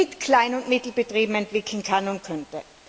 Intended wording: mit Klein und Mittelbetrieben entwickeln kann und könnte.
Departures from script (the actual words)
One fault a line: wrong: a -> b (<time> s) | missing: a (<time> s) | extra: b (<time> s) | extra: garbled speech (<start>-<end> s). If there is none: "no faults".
no faults